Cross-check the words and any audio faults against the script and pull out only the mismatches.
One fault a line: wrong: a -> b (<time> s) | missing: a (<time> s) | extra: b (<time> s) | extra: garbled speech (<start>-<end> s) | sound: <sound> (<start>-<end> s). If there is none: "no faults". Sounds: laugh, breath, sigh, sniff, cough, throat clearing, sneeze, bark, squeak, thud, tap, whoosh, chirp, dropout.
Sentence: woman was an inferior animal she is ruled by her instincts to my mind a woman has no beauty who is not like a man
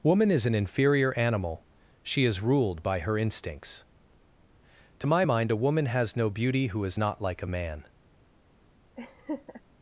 wrong: was -> is (0.3 s)
sound: laugh (9.0-9.6 s)